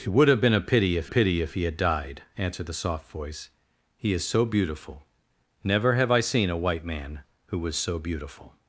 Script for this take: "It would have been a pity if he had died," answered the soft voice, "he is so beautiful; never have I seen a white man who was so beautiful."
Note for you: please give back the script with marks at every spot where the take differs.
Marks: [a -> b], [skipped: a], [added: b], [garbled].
"It would have been a pity if [added: pity if] he had died," answered the soft voice, "he is so beautiful; never have I seen a white man who was so beautiful."